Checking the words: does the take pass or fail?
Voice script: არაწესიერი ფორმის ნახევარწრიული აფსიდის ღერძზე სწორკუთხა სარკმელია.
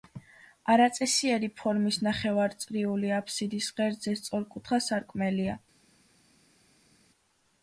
pass